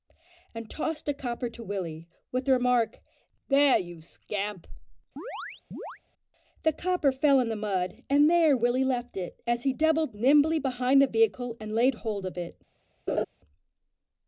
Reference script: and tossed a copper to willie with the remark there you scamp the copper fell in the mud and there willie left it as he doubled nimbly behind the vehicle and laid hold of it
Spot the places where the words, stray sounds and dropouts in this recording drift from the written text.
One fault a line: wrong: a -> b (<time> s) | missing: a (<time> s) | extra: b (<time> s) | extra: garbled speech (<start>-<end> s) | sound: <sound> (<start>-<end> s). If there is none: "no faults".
sound: chirp (5.2-6.0 s)
sound: laugh (13.1-13.2 s)